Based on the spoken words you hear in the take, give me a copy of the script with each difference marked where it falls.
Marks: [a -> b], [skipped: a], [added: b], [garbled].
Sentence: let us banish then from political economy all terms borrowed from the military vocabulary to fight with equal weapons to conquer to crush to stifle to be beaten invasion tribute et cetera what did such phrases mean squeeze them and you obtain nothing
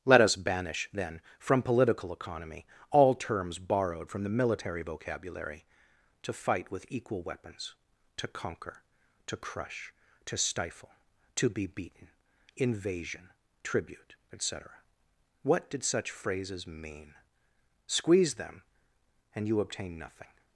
let us banish then from political economy all terms borrowed from the military vocabulary to fight with equal weapons to conquer to crush to stifle to be beaten invasion tribute et cetera what did such phrases mean squeeze them and you obtain nothing